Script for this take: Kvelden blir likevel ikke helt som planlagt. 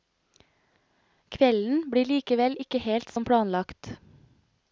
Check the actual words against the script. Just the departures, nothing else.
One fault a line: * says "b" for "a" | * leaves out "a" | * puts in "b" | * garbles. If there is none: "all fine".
all fine